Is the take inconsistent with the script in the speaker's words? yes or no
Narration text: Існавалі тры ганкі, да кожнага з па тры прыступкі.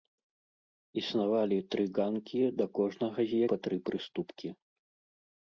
no